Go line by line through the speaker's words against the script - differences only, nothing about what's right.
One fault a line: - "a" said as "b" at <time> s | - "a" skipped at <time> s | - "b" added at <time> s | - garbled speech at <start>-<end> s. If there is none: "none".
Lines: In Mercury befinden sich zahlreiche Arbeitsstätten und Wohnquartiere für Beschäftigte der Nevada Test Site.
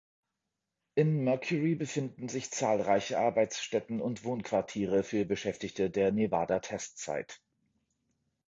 none